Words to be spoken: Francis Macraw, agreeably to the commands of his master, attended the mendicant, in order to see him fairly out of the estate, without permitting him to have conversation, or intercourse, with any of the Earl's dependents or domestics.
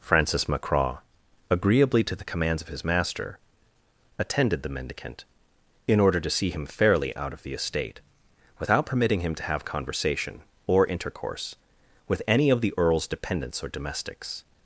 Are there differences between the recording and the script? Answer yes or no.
no